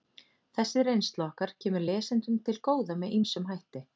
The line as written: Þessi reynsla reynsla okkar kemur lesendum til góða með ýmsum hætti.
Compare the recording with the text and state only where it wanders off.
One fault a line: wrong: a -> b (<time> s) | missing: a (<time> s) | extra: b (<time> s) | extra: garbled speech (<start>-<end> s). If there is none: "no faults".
missing: reynsla (1.3 s)